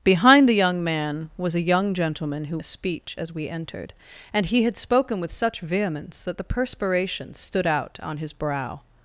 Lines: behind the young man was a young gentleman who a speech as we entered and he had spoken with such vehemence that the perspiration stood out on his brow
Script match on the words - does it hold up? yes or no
yes